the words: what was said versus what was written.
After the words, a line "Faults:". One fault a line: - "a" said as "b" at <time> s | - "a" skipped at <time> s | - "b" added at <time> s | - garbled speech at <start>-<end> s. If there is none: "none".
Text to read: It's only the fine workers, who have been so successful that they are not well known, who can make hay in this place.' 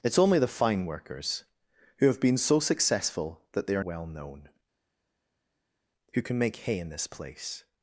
It's only the fine workers, who have been so successful that they are well known, who can make hay in this place.'
Faults:
- "not" skipped at 3.8 s